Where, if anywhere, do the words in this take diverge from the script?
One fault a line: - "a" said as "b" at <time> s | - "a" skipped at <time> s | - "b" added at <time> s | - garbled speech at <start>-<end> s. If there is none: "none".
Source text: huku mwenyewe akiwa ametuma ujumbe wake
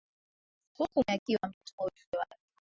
- "mwenyewe" skipped at 1.0 s